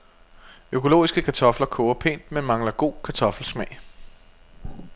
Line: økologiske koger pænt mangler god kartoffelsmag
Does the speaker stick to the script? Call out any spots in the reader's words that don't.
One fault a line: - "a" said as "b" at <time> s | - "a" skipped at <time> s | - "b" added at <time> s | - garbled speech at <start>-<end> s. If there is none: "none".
- "kartofler" added at 1.2 s
- "men" added at 2.3 s